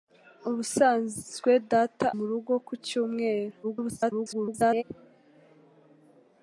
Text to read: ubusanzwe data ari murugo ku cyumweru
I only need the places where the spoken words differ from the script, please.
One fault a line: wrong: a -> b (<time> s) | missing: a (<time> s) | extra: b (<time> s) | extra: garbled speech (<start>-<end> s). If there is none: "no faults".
missing: ari (2.1 s)
extra: garbled speech (3.6-4.8 s)